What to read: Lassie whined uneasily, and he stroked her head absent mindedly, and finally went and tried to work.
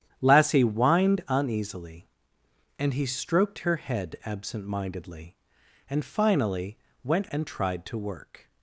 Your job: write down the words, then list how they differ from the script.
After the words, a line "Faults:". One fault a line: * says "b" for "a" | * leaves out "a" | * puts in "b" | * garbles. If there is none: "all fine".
Lassie whined uneasily, and he stroked her head absent mindedly, and finally went and tried to work.
Faults:
all fine